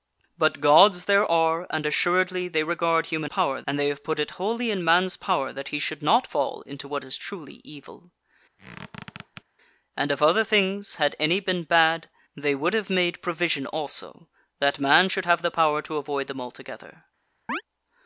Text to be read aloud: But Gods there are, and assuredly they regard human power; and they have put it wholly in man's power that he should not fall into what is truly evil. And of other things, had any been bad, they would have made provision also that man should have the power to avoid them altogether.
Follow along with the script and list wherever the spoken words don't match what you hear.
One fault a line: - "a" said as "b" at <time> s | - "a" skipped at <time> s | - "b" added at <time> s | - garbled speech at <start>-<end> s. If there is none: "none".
none